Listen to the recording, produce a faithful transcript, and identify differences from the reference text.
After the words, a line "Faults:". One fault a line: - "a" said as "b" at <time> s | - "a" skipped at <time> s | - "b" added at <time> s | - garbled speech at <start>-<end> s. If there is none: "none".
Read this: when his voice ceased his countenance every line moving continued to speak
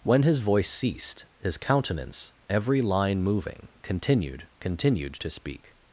when his voice ceased his countenance every line moving continued continued to speak
Faults:
- "continued" added at 4.6 s